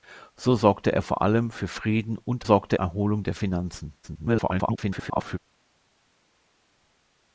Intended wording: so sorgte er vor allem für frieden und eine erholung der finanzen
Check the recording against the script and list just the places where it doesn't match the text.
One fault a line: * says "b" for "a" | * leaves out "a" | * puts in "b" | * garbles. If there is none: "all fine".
* says "sorgte" for "eine"
* garbles